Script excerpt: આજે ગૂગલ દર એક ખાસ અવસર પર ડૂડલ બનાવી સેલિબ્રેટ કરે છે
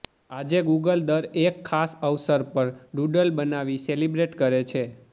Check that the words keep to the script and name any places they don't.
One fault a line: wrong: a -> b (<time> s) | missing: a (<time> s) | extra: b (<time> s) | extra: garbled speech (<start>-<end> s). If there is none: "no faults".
no faults